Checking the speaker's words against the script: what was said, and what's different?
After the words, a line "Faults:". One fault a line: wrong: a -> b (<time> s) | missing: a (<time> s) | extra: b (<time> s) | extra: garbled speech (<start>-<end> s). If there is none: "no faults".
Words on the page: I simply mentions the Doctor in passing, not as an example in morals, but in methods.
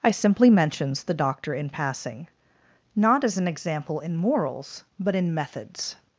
I simply mentions the Doctor in passing, not as an example in morals, but in methods.
Faults:
no faults